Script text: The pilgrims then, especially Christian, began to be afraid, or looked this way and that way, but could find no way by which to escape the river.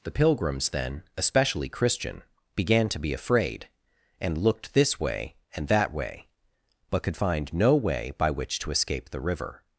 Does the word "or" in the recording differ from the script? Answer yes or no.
yes